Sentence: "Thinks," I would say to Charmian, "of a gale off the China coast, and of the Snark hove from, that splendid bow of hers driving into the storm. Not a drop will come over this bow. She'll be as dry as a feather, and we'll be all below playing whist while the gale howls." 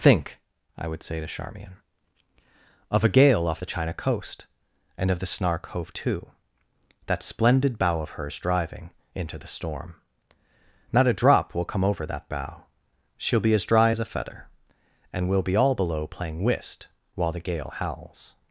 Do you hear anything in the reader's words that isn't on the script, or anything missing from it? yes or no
yes